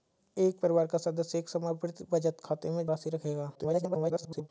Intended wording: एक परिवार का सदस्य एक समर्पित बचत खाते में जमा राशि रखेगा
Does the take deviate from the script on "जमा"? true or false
true